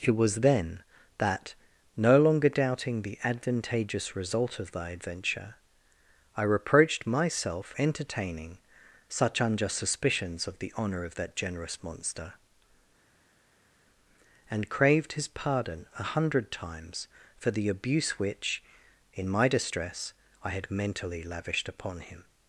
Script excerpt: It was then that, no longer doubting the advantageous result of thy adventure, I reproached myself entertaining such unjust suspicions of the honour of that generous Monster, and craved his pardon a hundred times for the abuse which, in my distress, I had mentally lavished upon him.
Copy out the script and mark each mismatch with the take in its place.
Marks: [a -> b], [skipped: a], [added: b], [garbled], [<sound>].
It was then that, no longer doubting the advantageous result of thy adventure, I reproached myself entertaining such unjust suspicions of the honour of that generous Monster, and craved his pardon a hundred times for the abuse which, in my distress, I had mentally lavished upon him.